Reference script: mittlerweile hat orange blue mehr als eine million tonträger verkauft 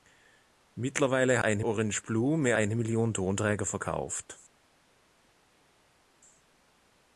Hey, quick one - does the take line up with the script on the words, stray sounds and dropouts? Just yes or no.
no